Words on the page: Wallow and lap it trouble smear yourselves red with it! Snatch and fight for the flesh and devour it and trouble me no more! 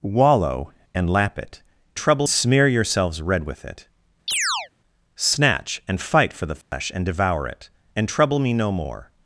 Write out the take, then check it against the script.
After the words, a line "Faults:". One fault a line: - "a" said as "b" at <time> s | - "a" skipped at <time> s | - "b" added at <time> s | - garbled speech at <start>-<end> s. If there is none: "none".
Wallow and lap it trouble smear yourselves red with it! Snatch and fight for the flesh and devour it and trouble me no more!
Faults:
none